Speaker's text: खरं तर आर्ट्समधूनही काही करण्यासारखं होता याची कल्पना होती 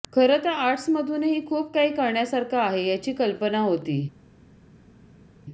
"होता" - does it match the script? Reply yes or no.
no